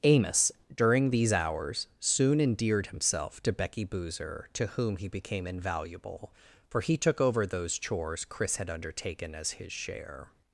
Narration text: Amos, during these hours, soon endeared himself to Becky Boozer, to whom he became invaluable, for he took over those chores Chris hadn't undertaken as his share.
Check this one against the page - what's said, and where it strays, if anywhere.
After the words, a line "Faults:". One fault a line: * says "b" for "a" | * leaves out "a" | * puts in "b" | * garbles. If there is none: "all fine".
Amos, during these hours, soon endeared himself to Becky Boozer, to whom he became invaluable, for he took over those chores Chris had undertaken as his share.
Faults:
* says "had" for "hadn't"